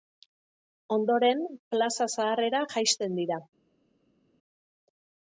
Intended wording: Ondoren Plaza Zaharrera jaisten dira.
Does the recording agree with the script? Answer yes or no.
yes